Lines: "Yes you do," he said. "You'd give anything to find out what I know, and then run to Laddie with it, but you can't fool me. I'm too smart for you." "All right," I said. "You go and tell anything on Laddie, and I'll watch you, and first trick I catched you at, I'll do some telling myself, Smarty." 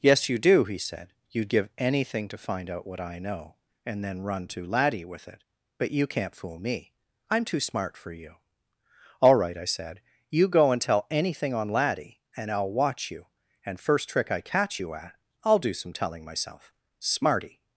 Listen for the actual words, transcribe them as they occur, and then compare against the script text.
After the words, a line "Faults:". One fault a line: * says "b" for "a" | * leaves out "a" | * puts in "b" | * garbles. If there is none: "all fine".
"Yes you do," he said. "You'd give anything to find out what I know, and then run to Laddie with it, but you can't fool me. I'm too smart for you." "All right," I said. "You go and tell anything on Laddie, and I'll watch you, and first trick I catch you at, I'll do some telling myself, Smarty."
Faults:
* says "catch" for "catched"